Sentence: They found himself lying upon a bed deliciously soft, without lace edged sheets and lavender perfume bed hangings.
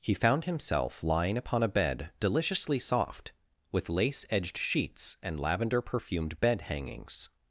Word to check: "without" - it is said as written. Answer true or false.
false